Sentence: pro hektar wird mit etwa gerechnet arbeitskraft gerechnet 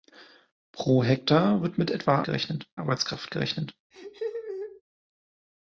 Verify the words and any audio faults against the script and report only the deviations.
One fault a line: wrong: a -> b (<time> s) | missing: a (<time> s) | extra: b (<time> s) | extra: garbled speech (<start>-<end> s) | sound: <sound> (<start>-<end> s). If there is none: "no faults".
sound: laugh (3.9-4.8 s)